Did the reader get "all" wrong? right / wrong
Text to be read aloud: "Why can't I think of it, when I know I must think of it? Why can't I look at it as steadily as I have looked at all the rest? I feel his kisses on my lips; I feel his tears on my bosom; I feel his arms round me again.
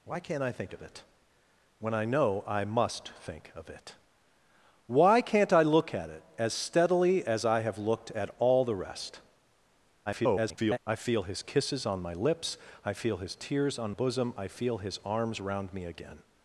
right